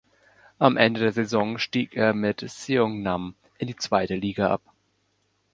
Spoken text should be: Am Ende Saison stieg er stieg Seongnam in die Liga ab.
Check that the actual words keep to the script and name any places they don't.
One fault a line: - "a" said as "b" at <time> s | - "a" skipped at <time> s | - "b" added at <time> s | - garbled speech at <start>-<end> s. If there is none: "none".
- "der" added at 1.0 s
- "stieg" said as "mit" at 2.1 s
- "zweite" added at 3.8 s